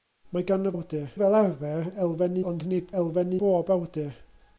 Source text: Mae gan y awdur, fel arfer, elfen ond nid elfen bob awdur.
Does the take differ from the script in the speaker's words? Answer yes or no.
no